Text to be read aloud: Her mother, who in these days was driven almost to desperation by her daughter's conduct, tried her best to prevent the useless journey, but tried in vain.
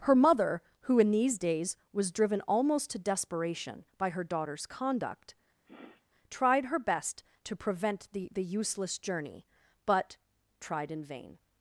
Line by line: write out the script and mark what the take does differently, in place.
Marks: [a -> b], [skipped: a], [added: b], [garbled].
Her mother, who in these days was driven almost to desperation by her daughter's conduct, tried her best to prevent the [added: the] useless journey, but tried in vain.